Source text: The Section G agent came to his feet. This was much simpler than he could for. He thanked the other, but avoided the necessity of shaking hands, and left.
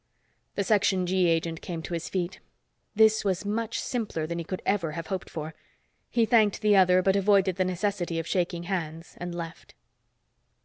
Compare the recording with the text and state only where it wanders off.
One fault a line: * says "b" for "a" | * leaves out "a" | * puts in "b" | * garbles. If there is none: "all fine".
* puts in "ever have hoped"